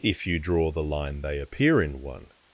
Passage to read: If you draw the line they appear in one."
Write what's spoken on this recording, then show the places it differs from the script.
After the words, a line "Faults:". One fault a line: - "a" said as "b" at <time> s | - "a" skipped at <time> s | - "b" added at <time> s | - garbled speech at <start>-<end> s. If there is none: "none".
If you draw the line they appear in one."
Faults:
none